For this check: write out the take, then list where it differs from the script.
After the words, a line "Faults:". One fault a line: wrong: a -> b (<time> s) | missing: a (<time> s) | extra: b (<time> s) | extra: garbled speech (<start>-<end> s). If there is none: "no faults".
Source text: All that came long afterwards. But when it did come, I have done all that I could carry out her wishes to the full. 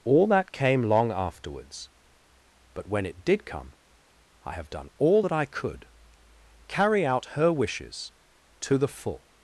All that came long afterwards. But when it did come, I have done all that I could carry out her wishes to the full.
Faults:
no faults